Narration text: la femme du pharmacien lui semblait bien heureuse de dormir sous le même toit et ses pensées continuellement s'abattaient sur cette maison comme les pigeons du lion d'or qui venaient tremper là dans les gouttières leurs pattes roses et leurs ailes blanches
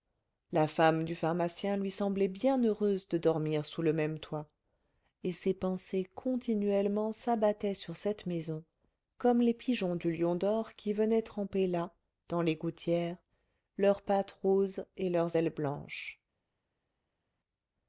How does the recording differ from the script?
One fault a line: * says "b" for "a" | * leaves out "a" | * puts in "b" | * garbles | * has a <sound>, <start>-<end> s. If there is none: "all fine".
all fine